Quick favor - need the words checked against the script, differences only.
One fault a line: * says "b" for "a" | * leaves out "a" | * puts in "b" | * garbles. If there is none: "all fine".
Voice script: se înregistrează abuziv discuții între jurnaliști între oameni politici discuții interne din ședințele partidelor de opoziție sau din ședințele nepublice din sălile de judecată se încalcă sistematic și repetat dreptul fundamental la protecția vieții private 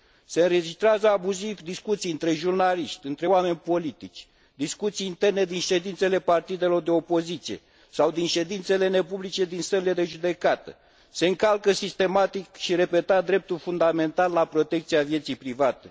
all fine